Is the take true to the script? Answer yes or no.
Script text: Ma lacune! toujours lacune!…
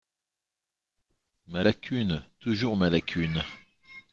no